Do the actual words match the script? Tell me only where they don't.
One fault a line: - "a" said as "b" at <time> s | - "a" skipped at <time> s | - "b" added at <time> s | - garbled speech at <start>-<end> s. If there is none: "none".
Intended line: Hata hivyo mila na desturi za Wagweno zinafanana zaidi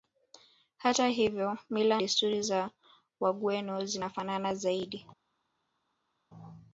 - "na" skipped at 2.0 s